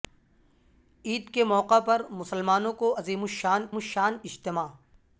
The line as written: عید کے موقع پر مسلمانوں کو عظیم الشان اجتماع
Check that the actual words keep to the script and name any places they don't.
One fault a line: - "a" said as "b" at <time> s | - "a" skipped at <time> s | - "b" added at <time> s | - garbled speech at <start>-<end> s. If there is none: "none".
- "الشان" added at 3.7 s